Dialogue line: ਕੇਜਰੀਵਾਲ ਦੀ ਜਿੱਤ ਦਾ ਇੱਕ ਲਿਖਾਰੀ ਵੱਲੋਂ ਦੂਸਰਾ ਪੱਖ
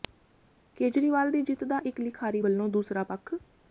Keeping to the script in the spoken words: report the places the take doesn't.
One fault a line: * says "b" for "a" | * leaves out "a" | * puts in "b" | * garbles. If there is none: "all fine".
all fine